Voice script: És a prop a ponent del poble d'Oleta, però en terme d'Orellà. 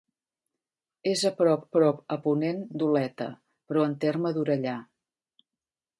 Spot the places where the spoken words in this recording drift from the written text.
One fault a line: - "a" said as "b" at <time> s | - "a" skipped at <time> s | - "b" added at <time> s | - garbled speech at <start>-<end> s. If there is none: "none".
- "prop" added at 1.8 s
- "del poble" skipped at 2.6 s